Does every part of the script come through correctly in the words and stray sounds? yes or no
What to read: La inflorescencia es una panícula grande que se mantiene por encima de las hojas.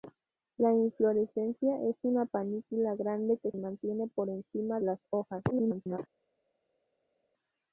no